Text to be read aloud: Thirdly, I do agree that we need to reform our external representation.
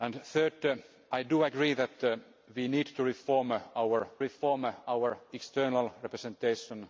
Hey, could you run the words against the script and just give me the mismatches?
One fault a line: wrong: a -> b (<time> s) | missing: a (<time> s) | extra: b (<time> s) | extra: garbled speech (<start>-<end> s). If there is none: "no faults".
extra: reform our (4.2 s)